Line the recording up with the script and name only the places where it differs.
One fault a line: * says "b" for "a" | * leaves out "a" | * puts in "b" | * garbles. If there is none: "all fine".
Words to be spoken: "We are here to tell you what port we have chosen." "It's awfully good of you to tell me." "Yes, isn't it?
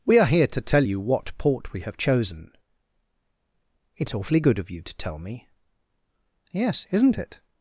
all fine